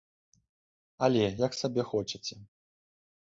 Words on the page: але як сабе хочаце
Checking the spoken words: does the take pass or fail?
pass